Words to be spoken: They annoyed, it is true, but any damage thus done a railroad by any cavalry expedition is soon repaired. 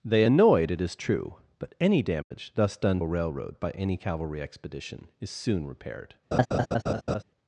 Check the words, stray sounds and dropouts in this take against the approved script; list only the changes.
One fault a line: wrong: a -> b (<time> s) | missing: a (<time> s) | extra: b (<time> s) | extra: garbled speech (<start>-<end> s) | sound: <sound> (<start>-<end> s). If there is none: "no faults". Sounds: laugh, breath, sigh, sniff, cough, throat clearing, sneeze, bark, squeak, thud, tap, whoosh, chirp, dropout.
sound: dropout (2.2-2.3 s)
sound: laugh (6.3-7.2 s)